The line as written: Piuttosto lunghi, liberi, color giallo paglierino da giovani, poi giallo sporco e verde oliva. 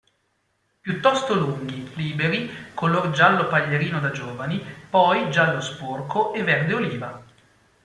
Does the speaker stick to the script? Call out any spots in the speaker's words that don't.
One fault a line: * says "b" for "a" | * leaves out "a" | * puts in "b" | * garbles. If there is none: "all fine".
all fine